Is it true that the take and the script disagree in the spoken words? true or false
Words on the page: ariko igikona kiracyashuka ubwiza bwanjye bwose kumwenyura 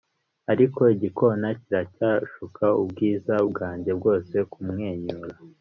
false